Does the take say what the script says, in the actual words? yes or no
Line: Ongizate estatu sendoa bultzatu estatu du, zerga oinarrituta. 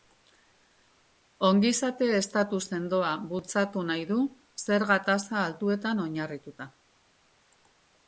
no